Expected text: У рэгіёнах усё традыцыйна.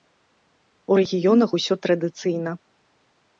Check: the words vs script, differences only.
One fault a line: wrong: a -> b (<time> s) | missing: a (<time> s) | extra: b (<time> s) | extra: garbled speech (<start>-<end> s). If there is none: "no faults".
no faults